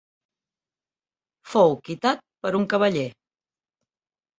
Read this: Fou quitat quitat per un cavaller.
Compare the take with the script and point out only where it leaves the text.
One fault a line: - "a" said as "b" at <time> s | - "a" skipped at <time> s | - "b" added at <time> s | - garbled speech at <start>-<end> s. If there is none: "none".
- "quitat" skipped at 2.2 s